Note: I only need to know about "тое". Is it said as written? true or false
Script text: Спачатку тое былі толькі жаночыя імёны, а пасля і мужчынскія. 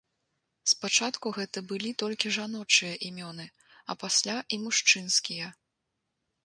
false